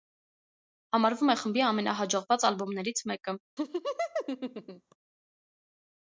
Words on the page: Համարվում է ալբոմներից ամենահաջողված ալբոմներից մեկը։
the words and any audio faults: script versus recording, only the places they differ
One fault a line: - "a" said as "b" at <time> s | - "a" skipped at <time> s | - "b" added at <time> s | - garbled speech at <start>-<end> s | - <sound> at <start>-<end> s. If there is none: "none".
- "ալբոմներից" said as "խմբի" at 1.4 s
- laugh at 3.6-5.0 s